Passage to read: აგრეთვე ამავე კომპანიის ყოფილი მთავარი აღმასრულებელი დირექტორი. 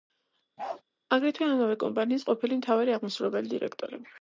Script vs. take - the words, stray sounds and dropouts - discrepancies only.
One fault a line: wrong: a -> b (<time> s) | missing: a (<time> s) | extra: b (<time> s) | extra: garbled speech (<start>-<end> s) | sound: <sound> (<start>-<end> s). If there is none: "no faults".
sound: bark (0.6-0.8 s)